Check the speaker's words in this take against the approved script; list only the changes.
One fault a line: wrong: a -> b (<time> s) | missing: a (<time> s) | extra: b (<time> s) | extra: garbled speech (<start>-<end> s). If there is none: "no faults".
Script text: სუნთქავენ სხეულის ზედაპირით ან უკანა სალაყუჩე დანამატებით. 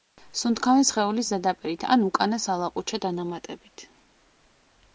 no faults